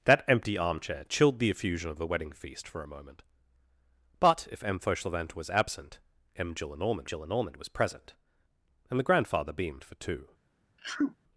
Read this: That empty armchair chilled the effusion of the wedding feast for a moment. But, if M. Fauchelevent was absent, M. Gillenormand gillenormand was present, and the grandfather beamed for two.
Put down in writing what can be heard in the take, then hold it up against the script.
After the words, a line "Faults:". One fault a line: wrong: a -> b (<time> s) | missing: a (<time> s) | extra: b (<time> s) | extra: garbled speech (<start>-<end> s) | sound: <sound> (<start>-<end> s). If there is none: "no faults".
That empty armchair chilled the effusion of the wedding feast for a moment. But, if M. Fauchelevent was absent, M. Gillenormand gillenormand was present, and the grandfather beamed for two.
Faults:
sound: sneeze (10.8-11.2 s)